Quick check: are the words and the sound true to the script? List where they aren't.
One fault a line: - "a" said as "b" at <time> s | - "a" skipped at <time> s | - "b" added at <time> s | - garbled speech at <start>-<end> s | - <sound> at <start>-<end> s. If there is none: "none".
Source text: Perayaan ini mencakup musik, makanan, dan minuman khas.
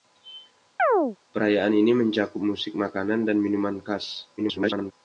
- chirp at 0.8-1.2 s
- garbled speech at 4.4-4.9 s